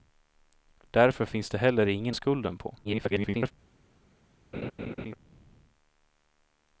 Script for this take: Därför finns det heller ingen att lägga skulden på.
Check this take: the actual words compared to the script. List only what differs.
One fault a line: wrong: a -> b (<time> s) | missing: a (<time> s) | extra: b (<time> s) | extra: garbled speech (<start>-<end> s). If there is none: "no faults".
missing: att lägga (2.1 s)
extra: garbled speech (2.8-3.5 s)